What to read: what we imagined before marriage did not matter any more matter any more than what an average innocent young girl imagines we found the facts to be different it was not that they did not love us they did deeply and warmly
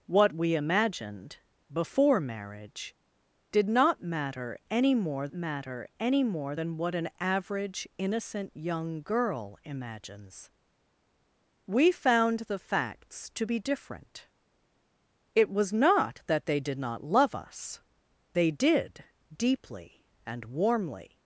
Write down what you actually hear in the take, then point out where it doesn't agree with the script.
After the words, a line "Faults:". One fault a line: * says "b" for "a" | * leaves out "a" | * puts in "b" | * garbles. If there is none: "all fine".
what we imagined before marriage did not matter any more matter any more than what an average innocent young girl imagines we found the facts to be different it was not that they did not love us they did deeply and warmly
Faults:
all fine